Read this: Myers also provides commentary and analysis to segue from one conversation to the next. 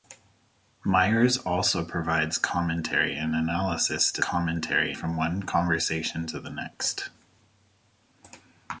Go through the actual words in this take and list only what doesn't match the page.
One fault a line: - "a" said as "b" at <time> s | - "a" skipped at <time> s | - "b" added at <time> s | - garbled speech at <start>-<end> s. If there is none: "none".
- "segue" said as "commentary" at 4.2 s